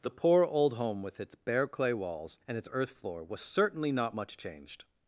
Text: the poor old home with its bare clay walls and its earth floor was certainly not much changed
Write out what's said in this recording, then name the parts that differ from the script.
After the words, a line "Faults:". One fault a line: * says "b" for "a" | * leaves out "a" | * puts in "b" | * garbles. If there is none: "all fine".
the poor old home with its bare clay walls and its earth floor was certainly not much changed
Faults:
all fine